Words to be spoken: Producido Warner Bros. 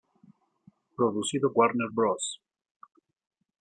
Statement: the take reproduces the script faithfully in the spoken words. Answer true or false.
true